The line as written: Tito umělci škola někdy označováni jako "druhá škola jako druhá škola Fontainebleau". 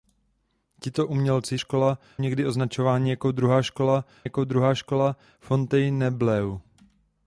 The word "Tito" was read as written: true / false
true